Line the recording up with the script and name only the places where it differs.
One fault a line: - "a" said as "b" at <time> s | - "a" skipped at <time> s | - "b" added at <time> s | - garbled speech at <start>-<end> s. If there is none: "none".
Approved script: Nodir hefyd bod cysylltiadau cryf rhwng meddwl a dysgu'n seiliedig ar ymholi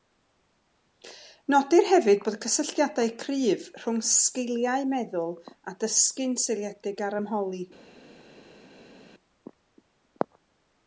- "sgiliau" added at 4.1 s